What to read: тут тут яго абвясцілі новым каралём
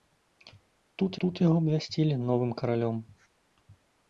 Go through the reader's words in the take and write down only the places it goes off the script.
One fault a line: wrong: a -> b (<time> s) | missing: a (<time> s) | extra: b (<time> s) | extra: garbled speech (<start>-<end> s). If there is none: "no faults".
no faults